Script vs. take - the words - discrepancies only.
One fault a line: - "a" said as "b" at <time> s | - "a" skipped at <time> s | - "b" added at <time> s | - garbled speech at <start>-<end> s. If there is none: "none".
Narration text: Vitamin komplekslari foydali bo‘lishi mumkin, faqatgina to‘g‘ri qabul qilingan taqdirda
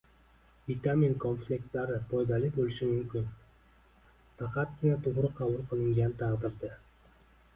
none